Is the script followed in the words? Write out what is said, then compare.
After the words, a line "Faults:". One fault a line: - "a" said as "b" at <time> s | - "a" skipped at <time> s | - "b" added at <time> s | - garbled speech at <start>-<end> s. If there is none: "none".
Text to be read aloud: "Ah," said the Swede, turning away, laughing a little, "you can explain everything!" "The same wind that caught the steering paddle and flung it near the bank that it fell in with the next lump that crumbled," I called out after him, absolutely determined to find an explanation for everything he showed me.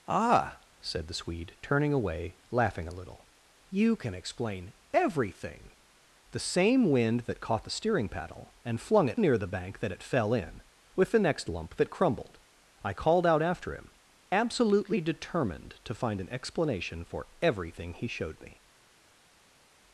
"Ah," said the Swede, turning away, laughing a little, "you can explain everything!" "The same wind that caught the steering paddle and flung it near the bank that it fell in with the next lump that crumbled," I called out after him, absolutely determined to find an explanation for everything he showed me.
Faults:
none